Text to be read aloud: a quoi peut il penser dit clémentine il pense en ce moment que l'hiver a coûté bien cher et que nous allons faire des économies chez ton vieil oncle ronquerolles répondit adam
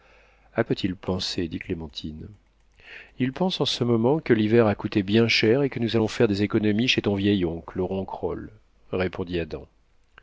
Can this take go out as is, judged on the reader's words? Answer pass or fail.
fail